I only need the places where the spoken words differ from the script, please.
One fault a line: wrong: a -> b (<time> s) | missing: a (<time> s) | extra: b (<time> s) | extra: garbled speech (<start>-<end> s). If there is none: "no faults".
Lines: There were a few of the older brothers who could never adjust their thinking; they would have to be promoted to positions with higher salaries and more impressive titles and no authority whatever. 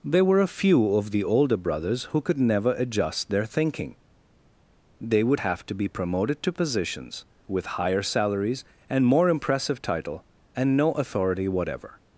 wrong: titles -> title (9.8 s)